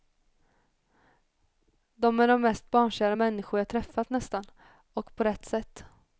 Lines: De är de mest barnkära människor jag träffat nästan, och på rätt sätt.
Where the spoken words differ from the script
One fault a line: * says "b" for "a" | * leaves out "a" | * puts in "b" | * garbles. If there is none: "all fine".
all fine